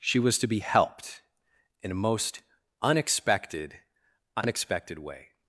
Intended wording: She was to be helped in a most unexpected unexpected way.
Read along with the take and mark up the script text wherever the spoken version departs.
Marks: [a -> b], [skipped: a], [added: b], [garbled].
She was to be helped in a most unexpected unexpected way.